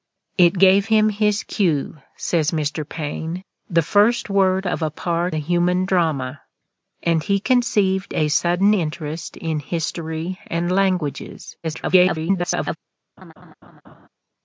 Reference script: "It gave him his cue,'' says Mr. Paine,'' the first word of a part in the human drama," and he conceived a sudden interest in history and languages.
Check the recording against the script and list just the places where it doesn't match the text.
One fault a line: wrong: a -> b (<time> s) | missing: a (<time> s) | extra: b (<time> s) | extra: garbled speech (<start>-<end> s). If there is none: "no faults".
missing: in (5.3 s)
extra: garbled speech (11.6-12.8 s)